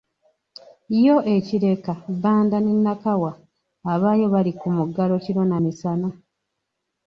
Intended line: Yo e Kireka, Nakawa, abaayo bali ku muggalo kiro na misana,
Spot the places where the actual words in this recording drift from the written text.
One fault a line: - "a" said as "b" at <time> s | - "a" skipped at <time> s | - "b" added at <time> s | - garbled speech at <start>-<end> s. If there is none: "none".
- "Bbanda ne" added at 2.1 s